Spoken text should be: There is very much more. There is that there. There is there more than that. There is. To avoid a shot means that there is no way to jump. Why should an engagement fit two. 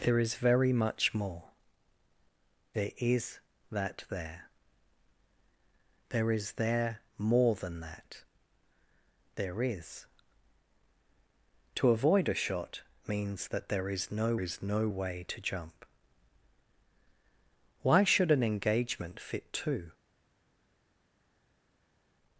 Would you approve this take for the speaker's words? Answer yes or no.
no